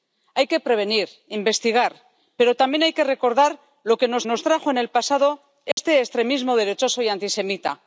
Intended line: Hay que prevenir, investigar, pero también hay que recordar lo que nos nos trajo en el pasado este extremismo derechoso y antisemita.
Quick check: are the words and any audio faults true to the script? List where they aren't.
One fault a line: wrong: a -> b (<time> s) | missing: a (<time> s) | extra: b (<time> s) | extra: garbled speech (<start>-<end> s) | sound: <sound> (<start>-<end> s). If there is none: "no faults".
sound: dropout (5.7-5.8 s)